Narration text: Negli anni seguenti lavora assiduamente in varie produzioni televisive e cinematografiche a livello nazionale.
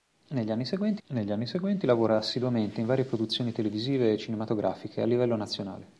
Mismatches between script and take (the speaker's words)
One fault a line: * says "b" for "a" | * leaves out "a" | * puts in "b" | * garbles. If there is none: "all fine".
* puts in "negli anni seguenti"